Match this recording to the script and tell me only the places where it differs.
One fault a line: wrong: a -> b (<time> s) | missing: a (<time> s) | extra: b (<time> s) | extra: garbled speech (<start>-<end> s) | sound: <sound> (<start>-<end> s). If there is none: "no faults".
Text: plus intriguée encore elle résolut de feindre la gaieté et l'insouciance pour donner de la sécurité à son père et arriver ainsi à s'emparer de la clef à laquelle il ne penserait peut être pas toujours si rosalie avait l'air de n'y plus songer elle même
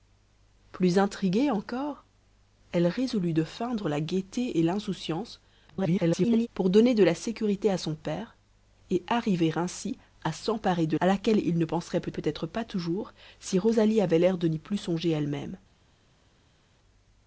extra: garbled speech (5.7-6.5 s)
missing: la clef (11.0 s)
extra: peut (12.1 s)